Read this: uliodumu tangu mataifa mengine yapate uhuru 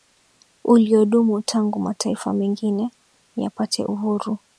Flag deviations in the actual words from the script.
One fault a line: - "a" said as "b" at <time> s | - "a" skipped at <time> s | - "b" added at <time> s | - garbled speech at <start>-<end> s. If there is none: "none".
none